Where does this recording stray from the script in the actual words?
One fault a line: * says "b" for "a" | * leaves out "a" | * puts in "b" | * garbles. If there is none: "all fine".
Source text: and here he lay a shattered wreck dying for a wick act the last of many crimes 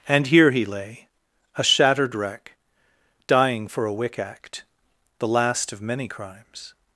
all fine